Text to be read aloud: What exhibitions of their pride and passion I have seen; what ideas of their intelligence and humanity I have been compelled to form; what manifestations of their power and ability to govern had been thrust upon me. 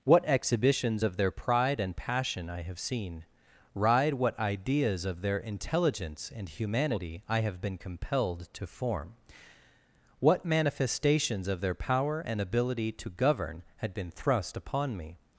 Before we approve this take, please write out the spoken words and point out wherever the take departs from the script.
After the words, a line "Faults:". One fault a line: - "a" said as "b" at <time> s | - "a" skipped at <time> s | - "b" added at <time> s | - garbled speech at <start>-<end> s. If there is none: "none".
What exhibitions of their pride and passion I have seen; ride what ideas of their intelligence and humanity I have been compelled to form; what manifestations of their power and ability to govern had been thrust upon me.
Faults:
- "ride" added at 3.7 s